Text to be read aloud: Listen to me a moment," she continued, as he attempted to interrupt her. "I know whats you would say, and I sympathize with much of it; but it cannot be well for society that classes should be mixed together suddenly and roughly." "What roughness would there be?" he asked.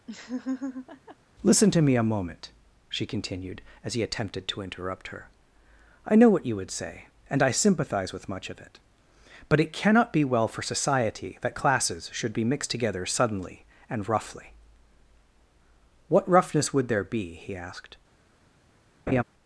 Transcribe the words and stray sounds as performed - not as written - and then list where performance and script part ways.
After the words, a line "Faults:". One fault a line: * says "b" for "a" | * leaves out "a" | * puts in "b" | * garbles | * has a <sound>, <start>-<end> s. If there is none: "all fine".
Listen to me a moment," she continued, as he attempted to interrupt her. "I know what you would say, and I sympathize with much of it; but it cannot be well for society that classes should be mixed together suddenly and roughly." "What roughness would there be?" he asked.
Faults:
* has a laugh, 0.1-1.2 s
* says "what" for "whats"
* has a laugh, 19.1-19.2 s